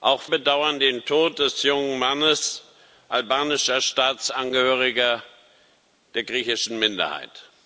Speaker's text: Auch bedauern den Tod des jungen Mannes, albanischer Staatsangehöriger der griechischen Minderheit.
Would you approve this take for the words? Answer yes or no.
yes